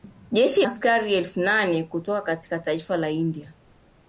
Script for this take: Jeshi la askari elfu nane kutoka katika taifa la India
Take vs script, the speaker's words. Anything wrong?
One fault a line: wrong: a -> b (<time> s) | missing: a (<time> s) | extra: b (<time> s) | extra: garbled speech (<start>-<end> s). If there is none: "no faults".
missing: la (0.7 s)